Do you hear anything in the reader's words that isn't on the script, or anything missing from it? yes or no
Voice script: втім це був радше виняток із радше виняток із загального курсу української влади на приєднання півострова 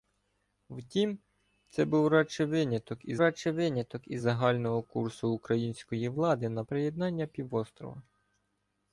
no